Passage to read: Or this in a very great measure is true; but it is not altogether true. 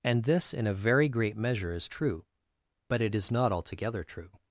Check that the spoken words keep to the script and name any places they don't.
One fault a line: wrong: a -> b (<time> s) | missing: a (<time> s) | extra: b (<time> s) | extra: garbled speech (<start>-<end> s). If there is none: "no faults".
wrong: Or -> And (0.0 s)